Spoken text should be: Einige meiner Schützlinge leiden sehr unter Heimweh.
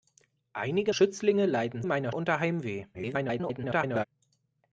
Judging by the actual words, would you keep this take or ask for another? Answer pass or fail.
fail